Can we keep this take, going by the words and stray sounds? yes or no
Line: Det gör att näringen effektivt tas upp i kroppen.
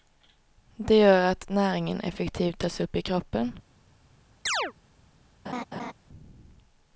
no